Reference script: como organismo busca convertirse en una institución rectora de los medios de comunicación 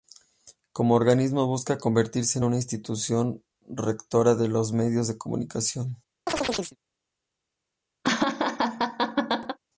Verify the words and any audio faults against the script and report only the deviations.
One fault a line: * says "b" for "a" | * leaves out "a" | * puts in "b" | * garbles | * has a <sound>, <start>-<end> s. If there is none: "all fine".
* has a chirp, 6.3-6.8 s
* has a laugh, 8.0-9.6 s